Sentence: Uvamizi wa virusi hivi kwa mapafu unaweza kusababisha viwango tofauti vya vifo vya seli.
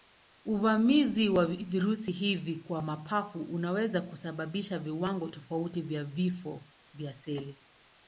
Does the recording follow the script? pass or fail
pass